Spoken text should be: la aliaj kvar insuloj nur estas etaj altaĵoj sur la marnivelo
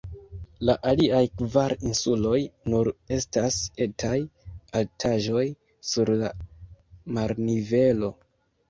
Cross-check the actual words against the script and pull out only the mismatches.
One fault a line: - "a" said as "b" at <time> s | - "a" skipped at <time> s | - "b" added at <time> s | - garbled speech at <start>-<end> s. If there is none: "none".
none